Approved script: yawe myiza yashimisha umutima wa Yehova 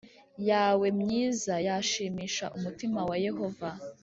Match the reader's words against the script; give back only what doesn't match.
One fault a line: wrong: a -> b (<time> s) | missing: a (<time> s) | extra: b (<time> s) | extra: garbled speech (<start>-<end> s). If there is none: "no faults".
no faults